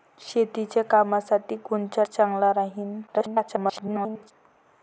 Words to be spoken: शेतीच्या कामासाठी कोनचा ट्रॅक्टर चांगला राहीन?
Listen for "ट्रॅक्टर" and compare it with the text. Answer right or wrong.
wrong